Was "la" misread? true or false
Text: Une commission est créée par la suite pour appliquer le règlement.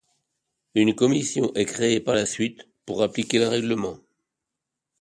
false